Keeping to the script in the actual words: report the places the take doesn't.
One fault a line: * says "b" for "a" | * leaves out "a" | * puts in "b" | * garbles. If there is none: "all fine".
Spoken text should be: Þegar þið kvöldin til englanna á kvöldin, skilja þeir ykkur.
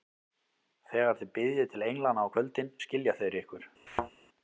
* says "biðjið" for "kvöldin"